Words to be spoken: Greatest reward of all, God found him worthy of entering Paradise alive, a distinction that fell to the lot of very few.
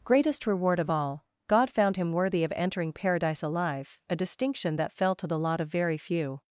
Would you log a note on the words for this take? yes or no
no